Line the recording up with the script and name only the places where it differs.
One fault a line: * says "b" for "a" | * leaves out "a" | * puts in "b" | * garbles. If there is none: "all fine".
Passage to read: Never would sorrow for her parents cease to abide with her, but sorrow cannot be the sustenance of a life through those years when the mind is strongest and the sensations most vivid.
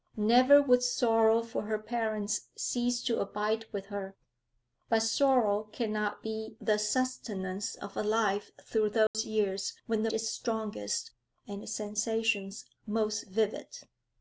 * leaves out "mind"